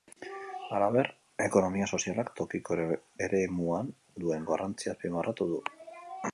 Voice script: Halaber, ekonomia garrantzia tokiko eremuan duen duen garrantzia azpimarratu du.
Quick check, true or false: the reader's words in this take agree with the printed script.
false